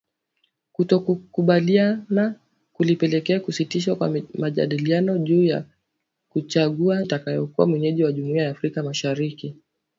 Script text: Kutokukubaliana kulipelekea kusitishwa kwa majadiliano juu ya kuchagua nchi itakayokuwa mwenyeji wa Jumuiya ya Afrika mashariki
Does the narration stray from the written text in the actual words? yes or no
yes